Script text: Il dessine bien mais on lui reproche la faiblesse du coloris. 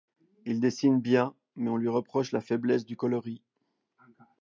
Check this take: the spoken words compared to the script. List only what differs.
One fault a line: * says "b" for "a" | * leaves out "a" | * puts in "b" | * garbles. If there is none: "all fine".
all fine